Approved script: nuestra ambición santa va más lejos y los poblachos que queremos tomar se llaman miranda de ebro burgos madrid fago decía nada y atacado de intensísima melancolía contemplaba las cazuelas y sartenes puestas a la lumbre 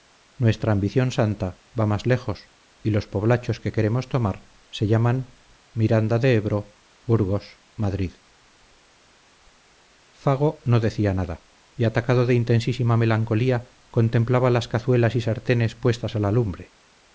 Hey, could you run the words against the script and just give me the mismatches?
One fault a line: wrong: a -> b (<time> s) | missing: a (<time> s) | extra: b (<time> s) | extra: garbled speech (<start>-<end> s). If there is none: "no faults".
extra: no (10.7 s)